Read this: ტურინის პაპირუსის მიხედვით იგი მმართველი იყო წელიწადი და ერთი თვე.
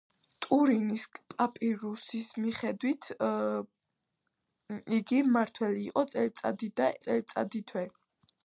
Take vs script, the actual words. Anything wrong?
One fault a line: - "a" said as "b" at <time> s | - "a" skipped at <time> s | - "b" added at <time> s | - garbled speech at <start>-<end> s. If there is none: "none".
- "ერთი" said as "წელიწადი" at 7.1 s